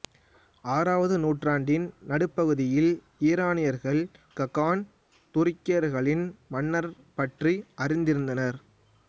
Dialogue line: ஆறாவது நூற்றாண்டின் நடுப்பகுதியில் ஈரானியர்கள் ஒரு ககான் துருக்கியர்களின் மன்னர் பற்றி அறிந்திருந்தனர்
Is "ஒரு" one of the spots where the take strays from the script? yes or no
yes